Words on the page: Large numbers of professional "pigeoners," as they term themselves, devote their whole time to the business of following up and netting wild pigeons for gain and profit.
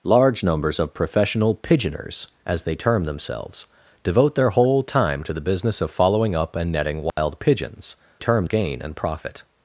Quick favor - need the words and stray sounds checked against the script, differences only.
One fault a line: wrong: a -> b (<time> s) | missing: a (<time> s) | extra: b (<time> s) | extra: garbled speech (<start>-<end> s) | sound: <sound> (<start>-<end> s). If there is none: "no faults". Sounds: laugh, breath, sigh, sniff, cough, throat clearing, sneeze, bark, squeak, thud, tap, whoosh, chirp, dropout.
sound: dropout (7.1-7.2 s)
wrong: for -> term (8.2 s)